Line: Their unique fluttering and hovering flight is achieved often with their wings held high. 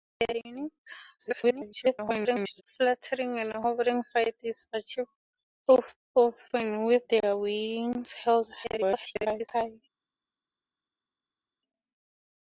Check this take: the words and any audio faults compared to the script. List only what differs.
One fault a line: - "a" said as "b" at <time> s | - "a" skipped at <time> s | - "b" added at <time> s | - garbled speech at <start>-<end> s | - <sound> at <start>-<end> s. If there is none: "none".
- garbled speech at 1.2-2.6 s
- garbled speech at 8.6-9.5 s